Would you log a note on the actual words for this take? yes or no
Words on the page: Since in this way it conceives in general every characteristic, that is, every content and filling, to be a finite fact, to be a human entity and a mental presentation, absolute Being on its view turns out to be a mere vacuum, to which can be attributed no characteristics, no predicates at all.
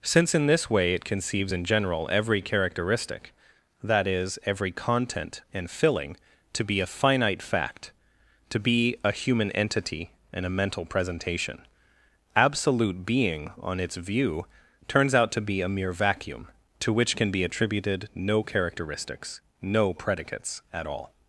no